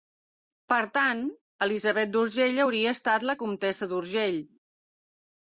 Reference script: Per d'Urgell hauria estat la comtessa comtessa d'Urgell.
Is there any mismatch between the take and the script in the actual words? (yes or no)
yes